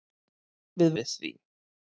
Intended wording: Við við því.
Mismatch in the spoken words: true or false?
false